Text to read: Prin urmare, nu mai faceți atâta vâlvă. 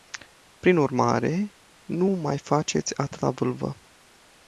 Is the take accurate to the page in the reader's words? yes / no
yes